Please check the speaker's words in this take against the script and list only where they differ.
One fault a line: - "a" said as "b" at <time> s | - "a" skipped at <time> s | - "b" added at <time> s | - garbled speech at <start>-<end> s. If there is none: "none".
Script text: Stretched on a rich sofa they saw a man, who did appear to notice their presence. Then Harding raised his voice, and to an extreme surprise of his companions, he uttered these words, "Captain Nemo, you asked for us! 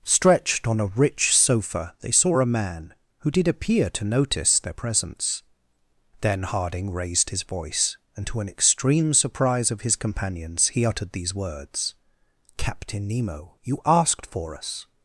none